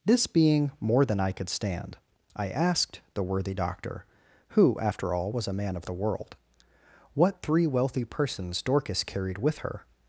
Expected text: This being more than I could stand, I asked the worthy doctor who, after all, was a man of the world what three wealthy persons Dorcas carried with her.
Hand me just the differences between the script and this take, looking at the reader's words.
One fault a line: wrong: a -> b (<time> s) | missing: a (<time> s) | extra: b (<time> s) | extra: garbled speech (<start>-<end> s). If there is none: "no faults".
no faults